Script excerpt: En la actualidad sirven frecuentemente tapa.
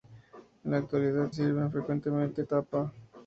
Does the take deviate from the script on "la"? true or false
false